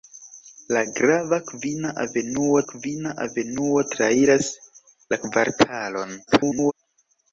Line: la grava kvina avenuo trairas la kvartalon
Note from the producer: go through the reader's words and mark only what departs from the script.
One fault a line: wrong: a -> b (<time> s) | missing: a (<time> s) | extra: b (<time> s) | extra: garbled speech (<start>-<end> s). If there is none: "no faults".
extra: kvina avenuo (2.7 s)
extra: garbled speech (6.3-6.7 s)